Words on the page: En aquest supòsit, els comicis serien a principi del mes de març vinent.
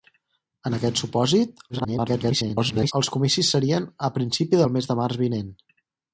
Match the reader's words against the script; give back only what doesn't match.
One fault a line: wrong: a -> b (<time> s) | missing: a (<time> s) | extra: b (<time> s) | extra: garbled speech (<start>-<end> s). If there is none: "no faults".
extra: garbled speech (1.7-2.9 s)